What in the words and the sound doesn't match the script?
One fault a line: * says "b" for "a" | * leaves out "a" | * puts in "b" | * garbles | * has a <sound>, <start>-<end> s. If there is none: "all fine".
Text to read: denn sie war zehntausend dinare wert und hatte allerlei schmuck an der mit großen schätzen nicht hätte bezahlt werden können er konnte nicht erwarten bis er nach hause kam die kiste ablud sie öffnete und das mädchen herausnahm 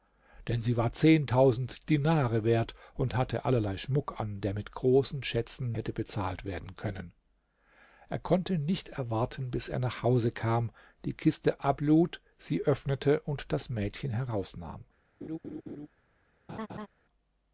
* leaves out "nicht"
* has a laugh, 15.2-15.9 s
* has a laugh, 16.5-16.9 s